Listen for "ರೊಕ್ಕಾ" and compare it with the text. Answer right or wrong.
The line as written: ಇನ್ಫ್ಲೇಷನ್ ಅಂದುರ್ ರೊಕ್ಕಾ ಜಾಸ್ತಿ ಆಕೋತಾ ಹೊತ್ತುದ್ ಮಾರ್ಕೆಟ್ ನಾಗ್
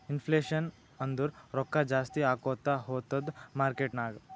right